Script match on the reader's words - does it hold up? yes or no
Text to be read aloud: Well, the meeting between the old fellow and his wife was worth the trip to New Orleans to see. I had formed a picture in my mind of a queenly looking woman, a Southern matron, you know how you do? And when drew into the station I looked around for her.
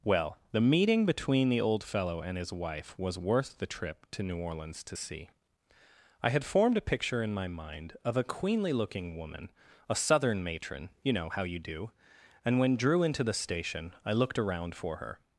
yes